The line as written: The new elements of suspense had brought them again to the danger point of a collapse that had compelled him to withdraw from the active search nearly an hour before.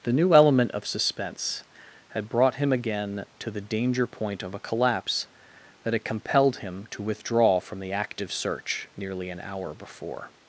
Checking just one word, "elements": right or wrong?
wrong